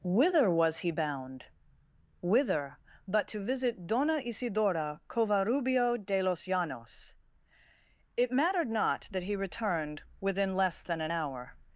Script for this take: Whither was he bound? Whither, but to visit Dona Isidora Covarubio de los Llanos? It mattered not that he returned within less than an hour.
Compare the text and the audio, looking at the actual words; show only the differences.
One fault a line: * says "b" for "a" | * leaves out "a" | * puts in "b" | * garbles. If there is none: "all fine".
all fine